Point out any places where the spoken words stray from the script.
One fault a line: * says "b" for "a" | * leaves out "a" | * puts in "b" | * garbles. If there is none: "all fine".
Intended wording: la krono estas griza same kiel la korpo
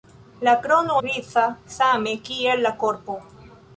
* leaves out "estas"